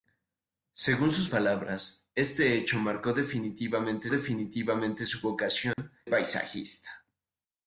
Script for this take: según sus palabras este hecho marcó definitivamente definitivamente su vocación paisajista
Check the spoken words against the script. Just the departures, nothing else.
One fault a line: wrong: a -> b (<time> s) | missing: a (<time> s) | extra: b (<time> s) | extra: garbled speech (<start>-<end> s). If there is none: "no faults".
no faults